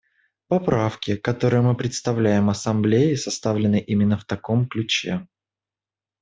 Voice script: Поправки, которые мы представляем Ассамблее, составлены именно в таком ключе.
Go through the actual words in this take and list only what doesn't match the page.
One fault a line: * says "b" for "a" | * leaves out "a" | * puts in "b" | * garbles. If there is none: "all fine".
all fine